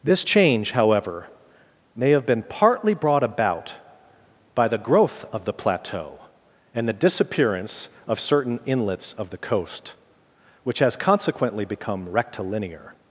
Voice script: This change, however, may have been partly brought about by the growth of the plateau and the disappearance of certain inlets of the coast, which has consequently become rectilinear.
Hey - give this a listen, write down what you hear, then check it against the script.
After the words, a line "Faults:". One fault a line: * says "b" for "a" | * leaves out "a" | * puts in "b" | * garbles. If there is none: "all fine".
This change, however, may have been partly brought about by the growth of the plateau and the disappearance of certain inlets of the coast, which has consequently become rectilinear.
Faults:
all fine